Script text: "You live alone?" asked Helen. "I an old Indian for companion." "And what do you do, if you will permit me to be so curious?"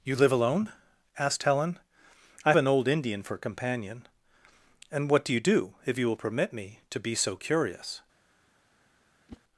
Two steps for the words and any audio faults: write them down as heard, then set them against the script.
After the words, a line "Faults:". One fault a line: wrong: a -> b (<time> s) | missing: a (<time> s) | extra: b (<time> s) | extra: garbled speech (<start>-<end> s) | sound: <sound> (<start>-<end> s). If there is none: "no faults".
"You live alone?" asked Helen. "I an old Indian for companion." "And what do you do, if you will permit me to be so curious?"
Faults:
sound: whoosh (9.3-9.4 s)